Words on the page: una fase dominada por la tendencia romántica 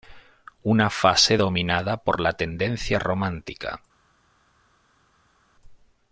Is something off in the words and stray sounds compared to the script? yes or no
no